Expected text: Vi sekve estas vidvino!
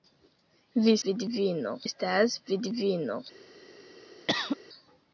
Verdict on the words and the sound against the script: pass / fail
fail